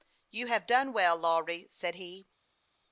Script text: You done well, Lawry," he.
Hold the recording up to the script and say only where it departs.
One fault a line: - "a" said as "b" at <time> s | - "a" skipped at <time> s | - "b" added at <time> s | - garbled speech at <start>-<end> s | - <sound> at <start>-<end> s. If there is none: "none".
- "have" added at 0.5 s
- "said" added at 1.7 s